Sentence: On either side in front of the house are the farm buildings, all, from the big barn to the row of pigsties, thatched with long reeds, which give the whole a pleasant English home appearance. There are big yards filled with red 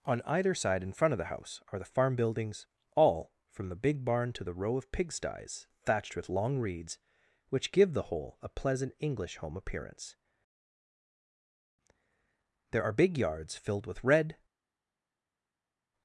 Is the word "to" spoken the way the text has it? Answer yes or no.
yes